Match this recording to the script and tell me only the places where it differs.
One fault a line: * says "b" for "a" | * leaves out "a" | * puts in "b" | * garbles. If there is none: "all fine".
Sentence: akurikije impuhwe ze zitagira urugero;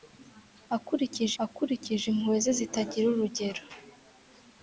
* puts in "akurikije"